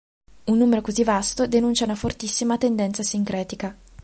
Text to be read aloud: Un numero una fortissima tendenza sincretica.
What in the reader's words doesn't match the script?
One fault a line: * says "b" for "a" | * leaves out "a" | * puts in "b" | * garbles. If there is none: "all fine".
* puts in "così vasto denuncia"